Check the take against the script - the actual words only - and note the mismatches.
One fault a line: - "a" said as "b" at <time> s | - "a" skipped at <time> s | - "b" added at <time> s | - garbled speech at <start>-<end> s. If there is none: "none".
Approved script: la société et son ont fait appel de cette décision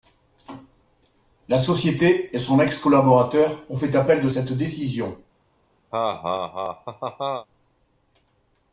- "ex collaborateur" added at 2.6 s